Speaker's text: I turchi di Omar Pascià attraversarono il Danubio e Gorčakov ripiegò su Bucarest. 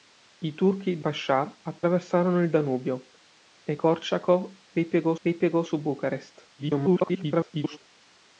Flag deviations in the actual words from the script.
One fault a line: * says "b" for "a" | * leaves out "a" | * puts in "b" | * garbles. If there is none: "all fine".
* leaves out "Omar"
* puts in "ripiegò"
* garbles